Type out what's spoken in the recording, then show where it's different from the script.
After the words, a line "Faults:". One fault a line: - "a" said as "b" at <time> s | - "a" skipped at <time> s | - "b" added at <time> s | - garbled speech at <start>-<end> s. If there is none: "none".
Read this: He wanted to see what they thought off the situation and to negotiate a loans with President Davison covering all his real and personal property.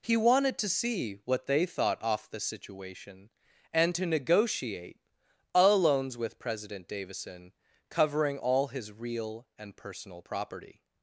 He wanted to see what they thought off the situation and to negotiate a loans with President Davison covering all his real and personal property.
Faults:
none